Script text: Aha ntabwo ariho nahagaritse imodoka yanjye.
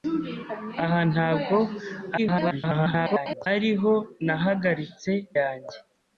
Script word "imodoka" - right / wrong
wrong